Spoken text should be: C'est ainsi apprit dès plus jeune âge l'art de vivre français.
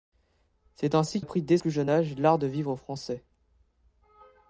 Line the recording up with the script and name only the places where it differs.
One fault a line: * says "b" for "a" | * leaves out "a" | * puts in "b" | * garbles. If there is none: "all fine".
all fine